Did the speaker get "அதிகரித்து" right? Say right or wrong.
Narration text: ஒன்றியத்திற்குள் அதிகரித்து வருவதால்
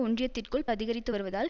right